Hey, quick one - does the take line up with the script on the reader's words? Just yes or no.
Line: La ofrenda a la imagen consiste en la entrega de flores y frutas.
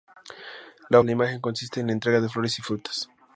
no